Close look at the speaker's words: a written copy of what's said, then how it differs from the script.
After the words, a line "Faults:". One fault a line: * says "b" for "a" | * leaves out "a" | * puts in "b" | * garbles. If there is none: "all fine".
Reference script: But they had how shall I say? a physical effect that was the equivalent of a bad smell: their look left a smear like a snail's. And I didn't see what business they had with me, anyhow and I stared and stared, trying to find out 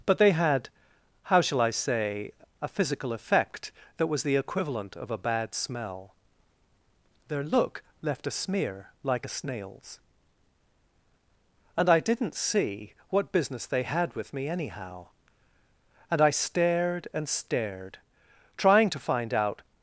But they had how shall I say? a physical effect that was the equivalent of a bad smell: their look left a smear like a snail's. And I didn't see what business they had with me, anyhow and I stared and stared, trying to find out
Faults:
all fine